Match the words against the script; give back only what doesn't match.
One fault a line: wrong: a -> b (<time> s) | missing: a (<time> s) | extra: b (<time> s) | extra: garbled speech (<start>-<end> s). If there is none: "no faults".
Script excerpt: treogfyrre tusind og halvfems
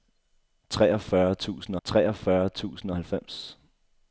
extra: treogfyrre tusind (1.8 s)